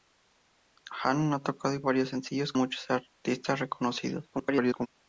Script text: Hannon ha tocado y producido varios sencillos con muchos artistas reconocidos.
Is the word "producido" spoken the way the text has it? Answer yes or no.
no